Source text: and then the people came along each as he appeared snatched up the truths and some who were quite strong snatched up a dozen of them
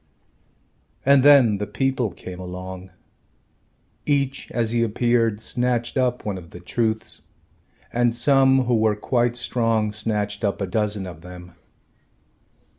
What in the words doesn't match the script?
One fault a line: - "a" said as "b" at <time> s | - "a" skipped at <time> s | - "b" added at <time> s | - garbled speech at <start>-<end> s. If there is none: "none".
- "one of" added at 6.2 s